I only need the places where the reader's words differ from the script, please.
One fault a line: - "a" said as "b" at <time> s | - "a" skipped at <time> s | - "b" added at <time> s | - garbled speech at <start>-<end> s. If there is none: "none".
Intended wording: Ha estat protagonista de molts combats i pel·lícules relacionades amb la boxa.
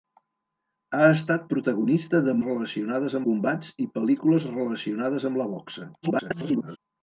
- "molts" said as "relacionades" at 2.5 s
- garbled speech at 6.0-6.8 s